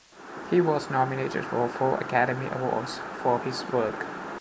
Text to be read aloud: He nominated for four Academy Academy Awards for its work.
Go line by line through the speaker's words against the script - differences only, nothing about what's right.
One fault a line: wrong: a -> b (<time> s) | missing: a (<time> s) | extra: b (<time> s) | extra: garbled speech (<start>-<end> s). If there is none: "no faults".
extra: was (0.6 s)
missing: Academy (2.5 s)
wrong: its -> his (3.4 s)